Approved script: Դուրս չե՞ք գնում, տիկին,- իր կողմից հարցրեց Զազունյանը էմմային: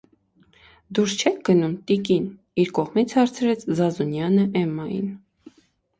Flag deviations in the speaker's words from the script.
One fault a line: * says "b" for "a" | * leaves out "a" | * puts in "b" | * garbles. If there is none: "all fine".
all fine